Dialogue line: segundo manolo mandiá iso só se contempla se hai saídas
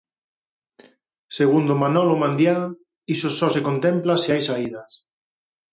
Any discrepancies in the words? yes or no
no